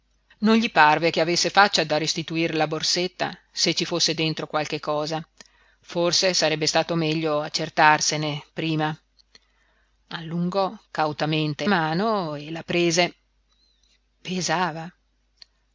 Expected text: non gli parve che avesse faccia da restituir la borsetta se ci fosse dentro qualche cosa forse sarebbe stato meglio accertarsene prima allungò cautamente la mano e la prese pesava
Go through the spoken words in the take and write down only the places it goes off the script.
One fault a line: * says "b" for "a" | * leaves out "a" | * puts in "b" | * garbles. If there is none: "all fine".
* leaves out "la"